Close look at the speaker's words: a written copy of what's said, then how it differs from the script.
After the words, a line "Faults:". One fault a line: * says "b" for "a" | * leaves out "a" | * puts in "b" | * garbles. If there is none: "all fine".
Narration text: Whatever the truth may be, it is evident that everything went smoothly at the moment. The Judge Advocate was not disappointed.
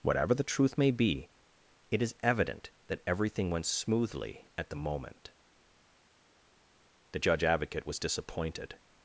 Whatever the truth may be, it is evident that everything went smoothly at the moment. The Judge Advocate was disappointed.
Faults:
* leaves out "not"